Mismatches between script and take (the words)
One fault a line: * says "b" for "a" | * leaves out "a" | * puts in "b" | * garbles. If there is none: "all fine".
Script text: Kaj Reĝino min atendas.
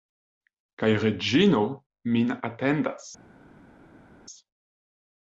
all fine